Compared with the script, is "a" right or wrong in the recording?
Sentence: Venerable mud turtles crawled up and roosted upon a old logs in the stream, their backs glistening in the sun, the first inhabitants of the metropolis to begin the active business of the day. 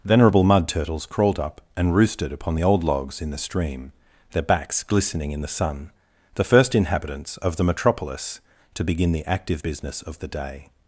wrong